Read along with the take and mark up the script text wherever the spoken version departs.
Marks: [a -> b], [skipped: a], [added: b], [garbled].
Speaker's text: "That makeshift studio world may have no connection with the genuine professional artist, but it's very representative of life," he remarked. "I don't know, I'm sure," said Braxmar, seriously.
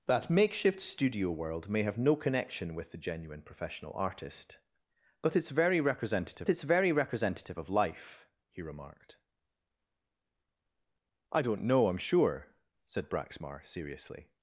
"That makeshift studio world may have no connection with the genuine professional artist, but it's very representative [added: it's very representative] of life," he remarked. "I don't know, I'm sure," said Braxmar, seriously.